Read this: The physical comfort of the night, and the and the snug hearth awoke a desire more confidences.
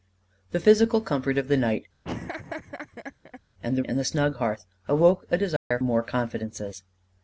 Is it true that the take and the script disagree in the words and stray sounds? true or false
true